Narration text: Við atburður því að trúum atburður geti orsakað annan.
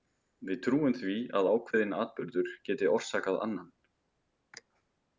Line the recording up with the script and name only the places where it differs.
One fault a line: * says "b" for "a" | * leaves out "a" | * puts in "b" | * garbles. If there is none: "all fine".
* says "trúum" for "atburður"
* says "ákveðinn" for "trúum"